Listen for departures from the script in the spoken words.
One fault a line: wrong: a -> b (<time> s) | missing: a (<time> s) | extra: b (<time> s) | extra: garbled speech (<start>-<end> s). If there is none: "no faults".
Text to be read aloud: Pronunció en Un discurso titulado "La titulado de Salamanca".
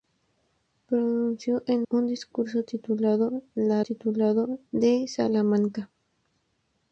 no faults